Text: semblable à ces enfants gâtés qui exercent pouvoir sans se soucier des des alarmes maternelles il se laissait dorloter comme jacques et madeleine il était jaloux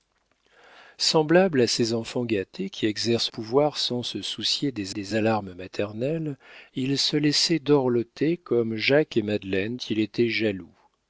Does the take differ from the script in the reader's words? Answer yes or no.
no